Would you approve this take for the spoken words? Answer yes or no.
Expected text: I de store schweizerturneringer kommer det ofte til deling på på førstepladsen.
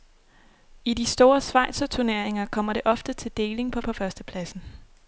yes